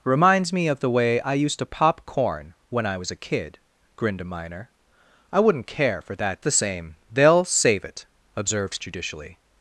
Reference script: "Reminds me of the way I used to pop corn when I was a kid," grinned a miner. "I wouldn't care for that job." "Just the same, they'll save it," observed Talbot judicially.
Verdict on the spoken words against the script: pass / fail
fail